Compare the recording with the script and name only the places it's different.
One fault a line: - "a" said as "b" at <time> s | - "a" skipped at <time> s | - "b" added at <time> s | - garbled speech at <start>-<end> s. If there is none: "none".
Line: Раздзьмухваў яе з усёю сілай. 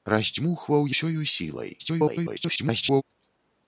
- "яе з" skipped at 0.9 s
- garbled speech at 1.8-3.0 s